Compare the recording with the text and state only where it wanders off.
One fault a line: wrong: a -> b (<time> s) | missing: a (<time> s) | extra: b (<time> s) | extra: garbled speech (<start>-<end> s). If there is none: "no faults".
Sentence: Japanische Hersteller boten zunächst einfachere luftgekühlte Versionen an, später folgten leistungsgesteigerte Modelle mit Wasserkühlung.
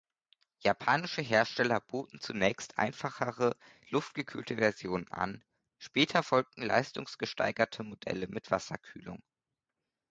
no faults